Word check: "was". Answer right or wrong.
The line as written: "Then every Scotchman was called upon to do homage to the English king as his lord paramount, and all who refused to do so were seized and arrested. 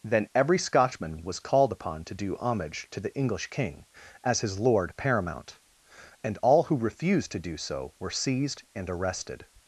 right